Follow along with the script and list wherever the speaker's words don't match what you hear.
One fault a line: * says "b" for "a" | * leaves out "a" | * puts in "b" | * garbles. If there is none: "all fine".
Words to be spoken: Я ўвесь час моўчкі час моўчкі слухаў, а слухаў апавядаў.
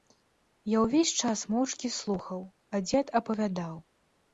* leaves out "час моўчкі"
* says "дзед" for "слухаў"